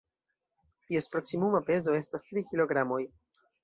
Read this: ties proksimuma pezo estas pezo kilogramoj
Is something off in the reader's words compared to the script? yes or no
yes